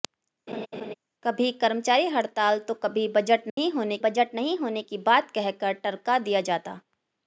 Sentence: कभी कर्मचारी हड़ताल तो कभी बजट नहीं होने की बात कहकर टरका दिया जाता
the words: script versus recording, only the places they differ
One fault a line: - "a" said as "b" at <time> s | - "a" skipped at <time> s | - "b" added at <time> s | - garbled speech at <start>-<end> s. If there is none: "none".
- "बजट नहीं होने" added at 4.0 s